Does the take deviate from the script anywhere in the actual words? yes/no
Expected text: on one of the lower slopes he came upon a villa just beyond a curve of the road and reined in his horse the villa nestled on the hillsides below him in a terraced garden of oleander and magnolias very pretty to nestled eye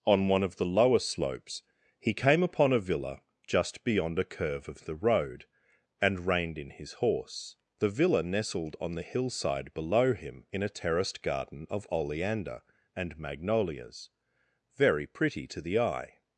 yes